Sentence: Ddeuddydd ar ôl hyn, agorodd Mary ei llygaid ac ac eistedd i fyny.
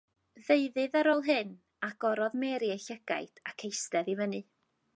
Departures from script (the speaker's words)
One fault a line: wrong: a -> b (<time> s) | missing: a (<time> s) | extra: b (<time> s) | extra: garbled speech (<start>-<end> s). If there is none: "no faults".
missing: ac (3.7 s)